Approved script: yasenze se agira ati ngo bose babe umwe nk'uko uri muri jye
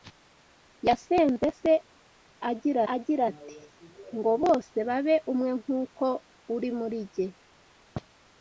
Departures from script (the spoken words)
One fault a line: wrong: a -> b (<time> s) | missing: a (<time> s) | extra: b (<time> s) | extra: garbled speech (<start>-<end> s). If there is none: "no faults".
extra: agira (2.9 s)